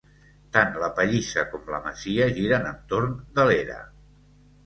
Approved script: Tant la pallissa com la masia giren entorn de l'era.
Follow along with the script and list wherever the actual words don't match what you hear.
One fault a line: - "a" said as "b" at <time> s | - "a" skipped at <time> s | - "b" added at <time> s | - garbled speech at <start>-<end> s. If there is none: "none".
none